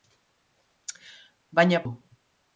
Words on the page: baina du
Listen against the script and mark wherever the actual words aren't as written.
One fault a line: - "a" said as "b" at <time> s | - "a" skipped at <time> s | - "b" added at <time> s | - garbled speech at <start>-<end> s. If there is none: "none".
none